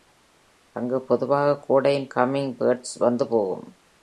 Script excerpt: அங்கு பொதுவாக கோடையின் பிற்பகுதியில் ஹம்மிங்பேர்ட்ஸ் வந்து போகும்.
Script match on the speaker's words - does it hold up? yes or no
no